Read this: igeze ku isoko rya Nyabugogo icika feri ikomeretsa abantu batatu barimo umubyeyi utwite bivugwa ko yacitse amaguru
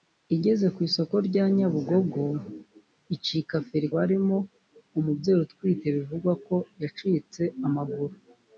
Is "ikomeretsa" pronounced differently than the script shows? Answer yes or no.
yes